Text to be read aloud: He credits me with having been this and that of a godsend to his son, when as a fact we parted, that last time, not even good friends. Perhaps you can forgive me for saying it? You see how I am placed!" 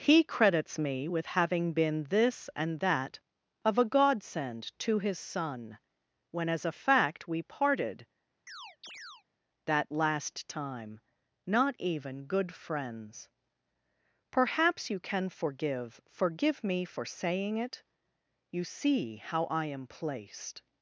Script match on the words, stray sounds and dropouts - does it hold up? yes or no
no